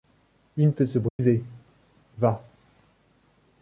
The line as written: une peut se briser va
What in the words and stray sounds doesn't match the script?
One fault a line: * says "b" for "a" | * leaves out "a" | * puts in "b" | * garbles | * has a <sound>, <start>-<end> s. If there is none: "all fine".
* has a dropout, 1.1-1.2 s